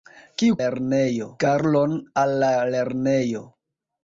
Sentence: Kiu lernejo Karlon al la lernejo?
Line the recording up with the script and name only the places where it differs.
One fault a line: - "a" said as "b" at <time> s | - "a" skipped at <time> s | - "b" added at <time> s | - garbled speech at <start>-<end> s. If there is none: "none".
none